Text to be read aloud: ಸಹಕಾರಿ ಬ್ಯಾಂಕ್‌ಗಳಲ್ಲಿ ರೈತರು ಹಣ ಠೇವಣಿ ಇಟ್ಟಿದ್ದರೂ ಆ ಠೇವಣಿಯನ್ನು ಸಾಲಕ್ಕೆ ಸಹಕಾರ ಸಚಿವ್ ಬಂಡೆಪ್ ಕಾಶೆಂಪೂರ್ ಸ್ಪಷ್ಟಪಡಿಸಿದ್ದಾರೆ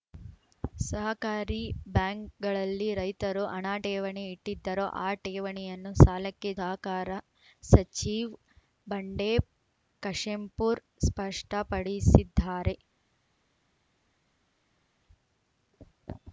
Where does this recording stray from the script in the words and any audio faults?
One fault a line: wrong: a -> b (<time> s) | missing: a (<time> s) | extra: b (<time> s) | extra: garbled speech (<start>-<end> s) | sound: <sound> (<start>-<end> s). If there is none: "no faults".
no faults